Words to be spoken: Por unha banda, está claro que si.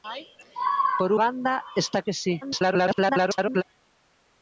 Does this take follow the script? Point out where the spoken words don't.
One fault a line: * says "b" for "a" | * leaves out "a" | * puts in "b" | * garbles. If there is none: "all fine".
* leaves out "unha"
* leaves out "claro"
* garbles